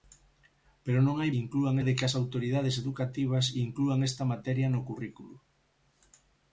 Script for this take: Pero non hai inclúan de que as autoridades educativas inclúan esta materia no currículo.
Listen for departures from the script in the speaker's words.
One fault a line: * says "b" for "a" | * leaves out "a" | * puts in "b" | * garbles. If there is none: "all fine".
all fine